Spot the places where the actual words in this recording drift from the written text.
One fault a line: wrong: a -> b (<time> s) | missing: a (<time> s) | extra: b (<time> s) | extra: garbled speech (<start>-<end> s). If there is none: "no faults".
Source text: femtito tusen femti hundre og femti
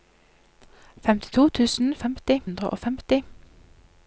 no faults